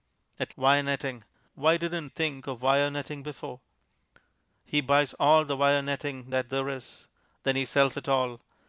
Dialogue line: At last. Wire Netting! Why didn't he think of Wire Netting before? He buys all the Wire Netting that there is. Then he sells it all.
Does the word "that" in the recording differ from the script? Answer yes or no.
no